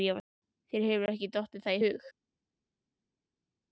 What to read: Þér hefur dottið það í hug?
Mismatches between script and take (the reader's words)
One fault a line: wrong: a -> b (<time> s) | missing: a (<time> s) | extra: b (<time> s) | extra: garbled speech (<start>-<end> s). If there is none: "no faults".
extra: ekki (1.1 s)